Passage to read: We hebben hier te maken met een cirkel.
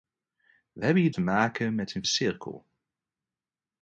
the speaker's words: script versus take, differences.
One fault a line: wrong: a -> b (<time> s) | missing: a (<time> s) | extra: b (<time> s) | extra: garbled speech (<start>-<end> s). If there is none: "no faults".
no faults